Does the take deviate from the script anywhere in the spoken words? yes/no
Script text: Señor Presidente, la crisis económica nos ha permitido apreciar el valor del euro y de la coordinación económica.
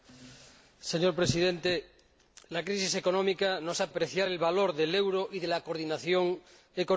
yes